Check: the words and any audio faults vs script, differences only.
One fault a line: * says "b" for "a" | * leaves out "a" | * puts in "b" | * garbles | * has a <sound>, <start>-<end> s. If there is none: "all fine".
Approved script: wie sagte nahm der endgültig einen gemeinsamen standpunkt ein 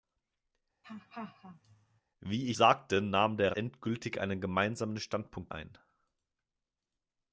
* has a laugh, 0.8-2.0 s